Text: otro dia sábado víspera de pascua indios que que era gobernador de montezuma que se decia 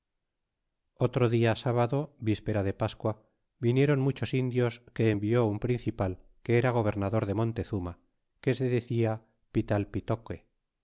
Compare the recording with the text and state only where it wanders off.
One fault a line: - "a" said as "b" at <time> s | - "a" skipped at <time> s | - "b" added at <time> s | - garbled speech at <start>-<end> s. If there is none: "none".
- "vinieron muchos" added at 3.6 s
- "envió un principal" added at 5.1 s